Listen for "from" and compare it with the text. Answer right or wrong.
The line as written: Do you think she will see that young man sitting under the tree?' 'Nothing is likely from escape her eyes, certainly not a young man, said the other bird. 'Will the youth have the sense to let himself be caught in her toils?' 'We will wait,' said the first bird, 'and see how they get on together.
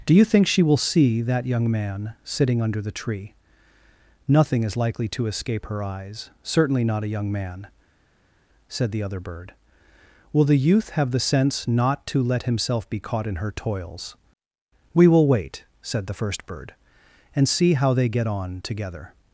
wrong